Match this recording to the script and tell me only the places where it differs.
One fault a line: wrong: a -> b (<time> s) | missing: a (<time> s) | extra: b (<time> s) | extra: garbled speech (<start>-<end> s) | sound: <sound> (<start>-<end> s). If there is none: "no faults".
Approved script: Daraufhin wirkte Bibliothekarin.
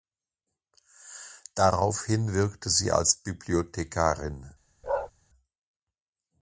extra: sie als (2.7 s)
sound: bark (4.8-5.1 s)